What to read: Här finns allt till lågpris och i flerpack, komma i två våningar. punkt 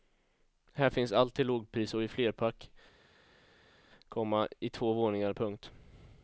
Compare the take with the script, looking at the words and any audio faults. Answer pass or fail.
pass